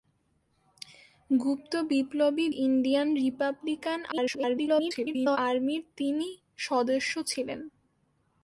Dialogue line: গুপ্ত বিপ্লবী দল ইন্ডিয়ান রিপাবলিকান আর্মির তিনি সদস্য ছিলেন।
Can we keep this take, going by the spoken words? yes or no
no